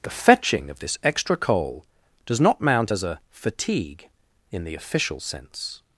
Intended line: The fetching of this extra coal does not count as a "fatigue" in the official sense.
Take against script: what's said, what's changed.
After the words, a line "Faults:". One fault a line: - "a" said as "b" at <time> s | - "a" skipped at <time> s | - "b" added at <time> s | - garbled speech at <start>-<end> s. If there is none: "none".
The fetching of this extra coal does not mount as a "fatigue" in the official sense.
Faults:
- "count" said as "mount" at 2.6 s